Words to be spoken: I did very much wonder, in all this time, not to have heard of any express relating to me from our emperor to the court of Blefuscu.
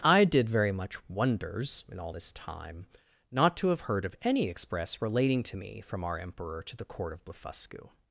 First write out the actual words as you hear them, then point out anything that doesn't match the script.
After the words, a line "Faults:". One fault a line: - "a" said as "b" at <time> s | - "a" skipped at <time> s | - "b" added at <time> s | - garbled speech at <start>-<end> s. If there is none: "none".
I did very much wonders, in all this time, not to have heard of any express relating to me from our emperor to the court of Blefuscu.
Faults:
- "wonder" said as "wonders" at 1.1 s